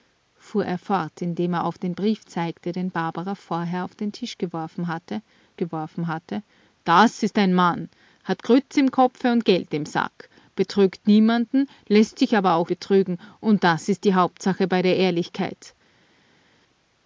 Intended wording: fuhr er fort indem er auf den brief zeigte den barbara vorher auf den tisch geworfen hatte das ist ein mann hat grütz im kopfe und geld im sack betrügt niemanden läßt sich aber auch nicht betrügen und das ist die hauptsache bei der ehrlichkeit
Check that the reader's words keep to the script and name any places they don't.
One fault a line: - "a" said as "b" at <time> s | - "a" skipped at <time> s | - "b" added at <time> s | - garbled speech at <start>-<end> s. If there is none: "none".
- "geworfen hatte" added at 5.6 s
- "nicht" skipped at 12.7 s